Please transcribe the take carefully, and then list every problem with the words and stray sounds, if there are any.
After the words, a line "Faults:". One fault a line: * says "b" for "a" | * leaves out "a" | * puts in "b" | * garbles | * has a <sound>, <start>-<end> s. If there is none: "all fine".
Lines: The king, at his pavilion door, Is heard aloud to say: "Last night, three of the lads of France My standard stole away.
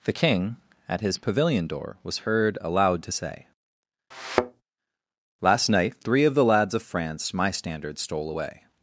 The king, at his pavilion door, Was heard aloud to say: "Last night, three of the lads of France My standard stole away.
Faults:
* says "Was" for "Is"
* has a thud, 4.1-4.6 s